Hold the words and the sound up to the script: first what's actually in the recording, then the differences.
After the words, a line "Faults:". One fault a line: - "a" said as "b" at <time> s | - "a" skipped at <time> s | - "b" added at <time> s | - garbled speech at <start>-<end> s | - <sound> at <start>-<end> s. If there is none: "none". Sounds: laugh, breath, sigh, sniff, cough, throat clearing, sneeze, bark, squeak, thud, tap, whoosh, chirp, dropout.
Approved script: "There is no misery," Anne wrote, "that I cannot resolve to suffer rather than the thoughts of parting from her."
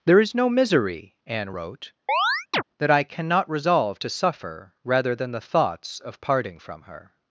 "There is no misery," Anne wrote, "that I cannot resolve to suffer rather than the thoughts of parting from her."
Faults:
- chirp at 2.1-2.6 s